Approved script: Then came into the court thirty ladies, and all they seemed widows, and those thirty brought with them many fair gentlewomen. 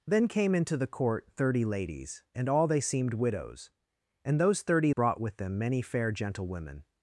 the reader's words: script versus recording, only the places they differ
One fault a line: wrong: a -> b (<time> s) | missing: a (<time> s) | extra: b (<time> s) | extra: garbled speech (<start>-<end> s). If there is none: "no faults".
no faults